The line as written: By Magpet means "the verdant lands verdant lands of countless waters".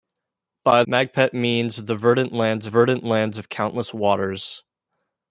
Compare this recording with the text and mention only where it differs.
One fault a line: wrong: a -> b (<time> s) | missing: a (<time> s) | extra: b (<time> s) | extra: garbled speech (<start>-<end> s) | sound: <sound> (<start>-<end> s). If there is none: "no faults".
no faults